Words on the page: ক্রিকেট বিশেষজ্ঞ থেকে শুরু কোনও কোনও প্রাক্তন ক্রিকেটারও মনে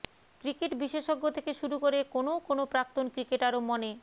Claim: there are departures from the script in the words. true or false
true